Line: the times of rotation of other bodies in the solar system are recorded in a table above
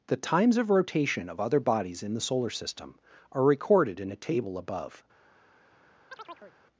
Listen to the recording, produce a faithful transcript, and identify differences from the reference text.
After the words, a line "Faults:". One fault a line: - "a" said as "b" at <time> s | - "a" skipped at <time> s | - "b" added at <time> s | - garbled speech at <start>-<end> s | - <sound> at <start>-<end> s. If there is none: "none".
the times of rotation of other bodies in the solar system are recorded in a table above
Faults:
- chirp at 6.1-6.6 s